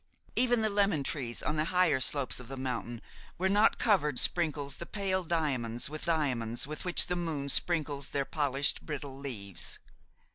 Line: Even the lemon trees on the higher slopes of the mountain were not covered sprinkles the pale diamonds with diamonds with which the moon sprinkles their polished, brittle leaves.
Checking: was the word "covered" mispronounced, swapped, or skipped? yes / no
no